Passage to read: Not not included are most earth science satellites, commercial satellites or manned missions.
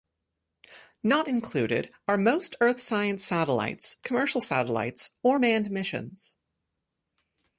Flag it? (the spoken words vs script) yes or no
yes